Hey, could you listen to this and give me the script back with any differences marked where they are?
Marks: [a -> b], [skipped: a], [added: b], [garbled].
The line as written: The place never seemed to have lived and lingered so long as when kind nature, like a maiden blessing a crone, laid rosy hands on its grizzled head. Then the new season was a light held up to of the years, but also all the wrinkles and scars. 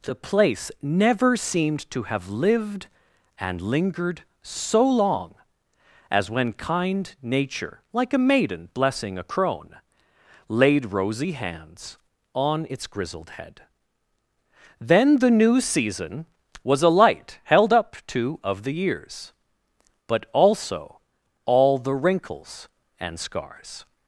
The place never seemed to have lived and lingered so long as when kind nature, like a maiden blessing a crone, laid rosy hands on its grizzled head. Then the new season was a light held up to of the years, but also all the wrinkles and scars.